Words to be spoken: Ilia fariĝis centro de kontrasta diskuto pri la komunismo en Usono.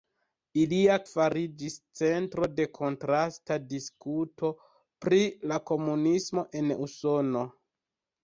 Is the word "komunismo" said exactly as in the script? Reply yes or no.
yes